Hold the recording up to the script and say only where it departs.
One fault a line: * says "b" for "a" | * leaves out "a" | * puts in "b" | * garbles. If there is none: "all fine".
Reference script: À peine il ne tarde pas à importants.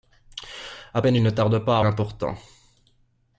all fine